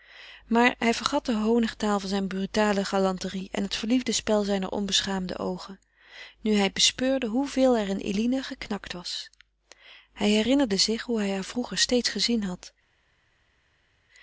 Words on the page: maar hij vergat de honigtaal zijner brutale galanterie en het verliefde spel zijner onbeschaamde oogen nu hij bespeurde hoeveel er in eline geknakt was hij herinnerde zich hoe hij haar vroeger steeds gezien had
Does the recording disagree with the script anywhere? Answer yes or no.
no